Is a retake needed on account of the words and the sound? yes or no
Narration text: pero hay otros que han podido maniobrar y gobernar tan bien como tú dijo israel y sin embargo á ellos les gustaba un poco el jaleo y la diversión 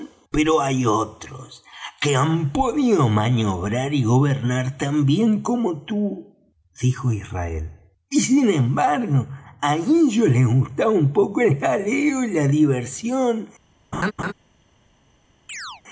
yes